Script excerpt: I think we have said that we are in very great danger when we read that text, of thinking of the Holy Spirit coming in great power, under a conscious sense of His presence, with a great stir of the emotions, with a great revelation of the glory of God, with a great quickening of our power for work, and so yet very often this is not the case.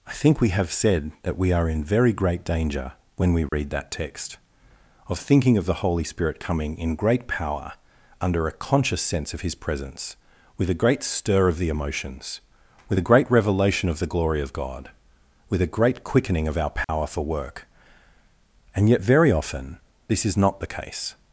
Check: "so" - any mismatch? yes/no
yes